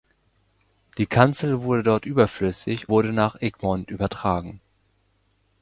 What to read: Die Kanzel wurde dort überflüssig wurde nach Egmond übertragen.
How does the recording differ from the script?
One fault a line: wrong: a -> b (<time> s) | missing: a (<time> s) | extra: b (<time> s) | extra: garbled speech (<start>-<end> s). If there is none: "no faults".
no faults